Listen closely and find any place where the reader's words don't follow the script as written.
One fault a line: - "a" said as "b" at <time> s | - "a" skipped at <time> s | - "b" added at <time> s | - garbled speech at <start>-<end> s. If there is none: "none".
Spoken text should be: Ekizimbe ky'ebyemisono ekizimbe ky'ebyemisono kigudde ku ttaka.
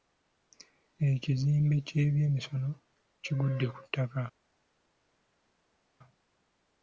- "ekizimbe ky'ebyemisono" skipped at 2.7 s